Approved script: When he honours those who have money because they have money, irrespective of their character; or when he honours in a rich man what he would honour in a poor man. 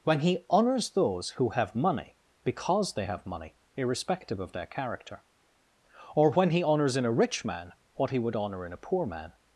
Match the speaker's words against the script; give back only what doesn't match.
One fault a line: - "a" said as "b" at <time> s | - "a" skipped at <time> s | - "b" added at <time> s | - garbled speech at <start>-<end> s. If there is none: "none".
none